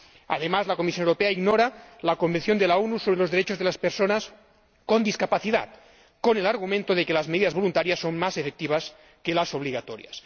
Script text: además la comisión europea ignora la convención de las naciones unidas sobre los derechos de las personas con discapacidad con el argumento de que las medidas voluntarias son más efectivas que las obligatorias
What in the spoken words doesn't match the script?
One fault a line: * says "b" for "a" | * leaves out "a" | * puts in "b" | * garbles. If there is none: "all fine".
all fine